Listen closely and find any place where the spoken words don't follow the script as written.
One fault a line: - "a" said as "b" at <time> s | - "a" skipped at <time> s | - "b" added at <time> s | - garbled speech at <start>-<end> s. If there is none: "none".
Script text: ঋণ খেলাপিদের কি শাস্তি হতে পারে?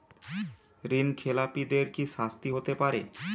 none